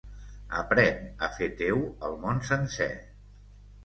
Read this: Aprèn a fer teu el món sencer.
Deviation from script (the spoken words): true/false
false